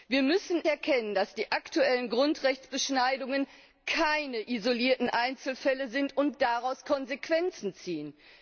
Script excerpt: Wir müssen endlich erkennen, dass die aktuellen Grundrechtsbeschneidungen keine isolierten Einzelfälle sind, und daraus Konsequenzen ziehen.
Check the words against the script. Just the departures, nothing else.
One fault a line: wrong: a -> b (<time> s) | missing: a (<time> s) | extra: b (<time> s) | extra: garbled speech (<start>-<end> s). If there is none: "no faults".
missing: endlich (0.6 s)